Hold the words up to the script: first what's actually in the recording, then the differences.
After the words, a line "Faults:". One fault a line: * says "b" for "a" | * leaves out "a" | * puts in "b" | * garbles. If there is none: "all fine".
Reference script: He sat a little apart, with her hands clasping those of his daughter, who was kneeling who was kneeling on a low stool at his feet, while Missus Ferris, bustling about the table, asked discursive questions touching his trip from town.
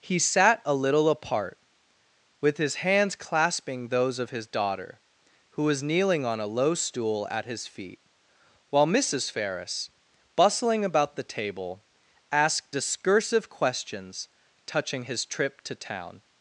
He sat a little apart, with his hands clasping those of his daughter, who was kneeling on a low stool at his feet, while Missus Ferris, bustling about the table, asked discursive questions touching his trip to town.
Faults:
* says "his" for "her"
* leaves out "who was kneeling"
* says "to" for "from"